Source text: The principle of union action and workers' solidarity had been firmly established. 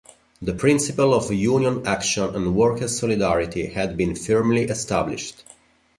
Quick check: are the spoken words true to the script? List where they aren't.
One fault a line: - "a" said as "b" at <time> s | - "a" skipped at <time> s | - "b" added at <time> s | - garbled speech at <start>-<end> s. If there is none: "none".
none